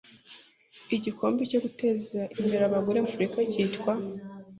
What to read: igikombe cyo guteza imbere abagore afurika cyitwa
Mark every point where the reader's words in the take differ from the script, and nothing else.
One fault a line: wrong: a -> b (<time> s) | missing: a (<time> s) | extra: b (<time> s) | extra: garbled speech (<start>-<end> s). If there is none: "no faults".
no faults